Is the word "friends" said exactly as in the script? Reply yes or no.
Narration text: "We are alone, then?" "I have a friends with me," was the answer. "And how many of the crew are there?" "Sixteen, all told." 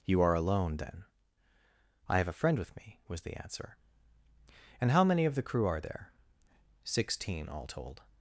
no